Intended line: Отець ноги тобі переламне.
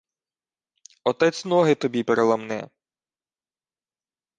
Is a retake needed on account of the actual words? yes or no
no